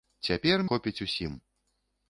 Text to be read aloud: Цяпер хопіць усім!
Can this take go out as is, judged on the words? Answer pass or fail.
pass